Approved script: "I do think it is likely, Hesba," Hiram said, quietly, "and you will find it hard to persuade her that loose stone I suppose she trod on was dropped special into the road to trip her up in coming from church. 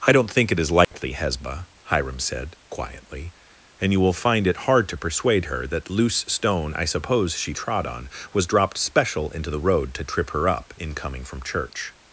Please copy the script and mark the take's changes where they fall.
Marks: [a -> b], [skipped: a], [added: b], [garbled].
"I [do -> don't] think it is likely, Hesba," Hiram said, quietly, "and you will find it hard to persuade her that loose stone I suppose she trod on was dropped special into the road to trip her up in coming from church.